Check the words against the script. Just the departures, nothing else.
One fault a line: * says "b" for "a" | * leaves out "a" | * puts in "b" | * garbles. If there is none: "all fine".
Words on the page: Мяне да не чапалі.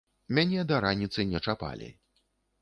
* puts in "раніцы"